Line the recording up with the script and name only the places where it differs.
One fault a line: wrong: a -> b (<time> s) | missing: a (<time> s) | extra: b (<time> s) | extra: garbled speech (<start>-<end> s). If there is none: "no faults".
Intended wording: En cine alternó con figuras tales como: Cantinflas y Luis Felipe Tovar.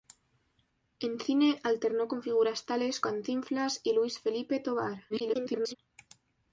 missing: como (3.0 s)
extra: garbled speech (5.1-5.8 s)